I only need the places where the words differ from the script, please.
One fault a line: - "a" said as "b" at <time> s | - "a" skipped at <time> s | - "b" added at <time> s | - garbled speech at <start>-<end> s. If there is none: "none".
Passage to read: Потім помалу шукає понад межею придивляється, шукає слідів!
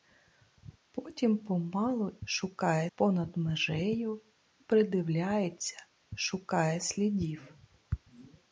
none